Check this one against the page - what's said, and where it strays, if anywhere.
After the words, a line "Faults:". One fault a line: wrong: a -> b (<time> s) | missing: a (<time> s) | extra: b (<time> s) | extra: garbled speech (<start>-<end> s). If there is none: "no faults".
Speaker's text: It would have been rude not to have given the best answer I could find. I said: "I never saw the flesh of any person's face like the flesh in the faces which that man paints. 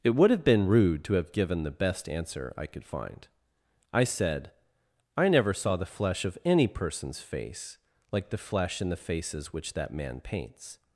It would have been rude to have given the best answer I could find. I said: "I never saw the flesh of any person's face like the flesh in the faces which that man paints.
Faults:
missing: not (1.0 s)